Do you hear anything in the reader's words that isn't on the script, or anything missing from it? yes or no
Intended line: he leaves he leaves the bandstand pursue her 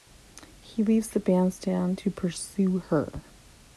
yes